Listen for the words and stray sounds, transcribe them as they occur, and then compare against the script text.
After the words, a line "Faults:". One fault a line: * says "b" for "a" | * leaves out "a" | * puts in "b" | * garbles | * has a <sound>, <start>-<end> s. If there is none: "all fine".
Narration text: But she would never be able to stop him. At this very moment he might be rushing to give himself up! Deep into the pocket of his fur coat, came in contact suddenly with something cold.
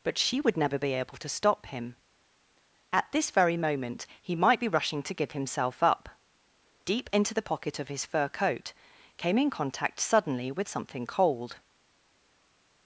But she would never be able to stop him. At this very moment he might be rushing to give himself up! Deep into the pocket of his fur coat, came in contact suddenly with something cold.
Faults:
all fine